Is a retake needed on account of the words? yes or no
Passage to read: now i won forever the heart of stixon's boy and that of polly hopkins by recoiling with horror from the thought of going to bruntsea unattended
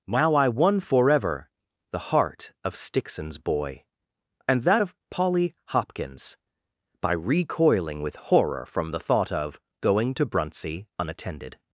no